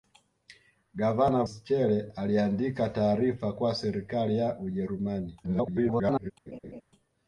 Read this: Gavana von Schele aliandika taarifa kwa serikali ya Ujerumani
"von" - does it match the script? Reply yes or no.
no